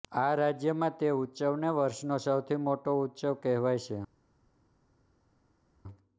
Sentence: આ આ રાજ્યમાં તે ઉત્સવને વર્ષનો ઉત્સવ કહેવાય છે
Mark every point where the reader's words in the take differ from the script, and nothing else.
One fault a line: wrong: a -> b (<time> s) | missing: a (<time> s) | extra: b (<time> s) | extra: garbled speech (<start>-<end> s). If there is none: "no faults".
missing: આ (0.3 s)
extra: સૌથી મોટો (2.2 s)